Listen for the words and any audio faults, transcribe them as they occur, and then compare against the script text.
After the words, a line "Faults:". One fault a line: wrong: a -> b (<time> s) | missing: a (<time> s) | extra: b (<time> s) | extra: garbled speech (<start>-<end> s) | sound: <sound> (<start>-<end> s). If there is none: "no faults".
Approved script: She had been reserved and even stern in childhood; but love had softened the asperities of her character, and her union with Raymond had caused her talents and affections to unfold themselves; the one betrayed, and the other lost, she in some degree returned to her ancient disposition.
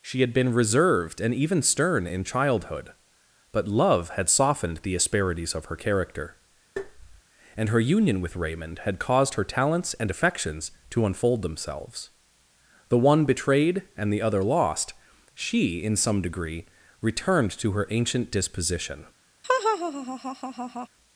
She had been reserved and even stern in childhood; but love had softened the asperities of her character, and her union with Raymond had caused her talents and affections to unfold themselves; the one betrayed, and the other lost, she in some degree returned to her ancient disposition.
Faults:
sound: tap (6.8-7.2 s)
sound: laugh (19.4-20.9 s)